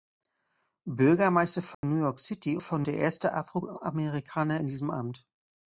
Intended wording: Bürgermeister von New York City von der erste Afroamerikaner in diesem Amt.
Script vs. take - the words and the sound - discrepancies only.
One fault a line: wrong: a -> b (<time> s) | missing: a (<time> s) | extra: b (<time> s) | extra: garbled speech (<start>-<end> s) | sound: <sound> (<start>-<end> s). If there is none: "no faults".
sound: dropout (1.7-1.8 s)